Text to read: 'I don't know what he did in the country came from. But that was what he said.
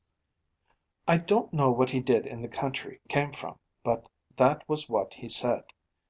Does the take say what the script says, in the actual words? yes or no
yes